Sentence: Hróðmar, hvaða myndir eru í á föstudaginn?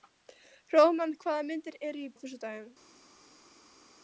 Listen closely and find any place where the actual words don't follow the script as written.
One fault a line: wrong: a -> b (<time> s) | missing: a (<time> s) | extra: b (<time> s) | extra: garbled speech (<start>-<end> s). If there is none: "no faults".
no faults